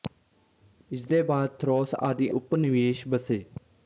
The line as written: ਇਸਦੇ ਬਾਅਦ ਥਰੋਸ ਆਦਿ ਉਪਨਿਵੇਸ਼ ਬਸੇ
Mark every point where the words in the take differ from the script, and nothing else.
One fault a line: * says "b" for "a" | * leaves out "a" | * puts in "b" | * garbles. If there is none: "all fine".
all fine